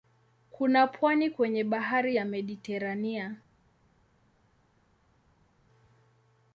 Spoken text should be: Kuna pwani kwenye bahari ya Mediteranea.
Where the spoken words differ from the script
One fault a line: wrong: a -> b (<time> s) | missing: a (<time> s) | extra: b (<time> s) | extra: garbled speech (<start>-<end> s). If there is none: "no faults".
no faults